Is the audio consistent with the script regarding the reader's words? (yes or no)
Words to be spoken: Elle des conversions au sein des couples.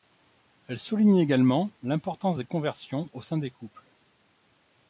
no